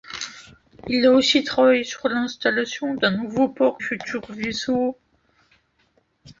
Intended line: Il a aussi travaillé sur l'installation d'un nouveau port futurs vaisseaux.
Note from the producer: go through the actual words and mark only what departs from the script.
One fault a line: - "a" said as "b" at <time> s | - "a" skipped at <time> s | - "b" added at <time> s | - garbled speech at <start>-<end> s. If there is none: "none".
none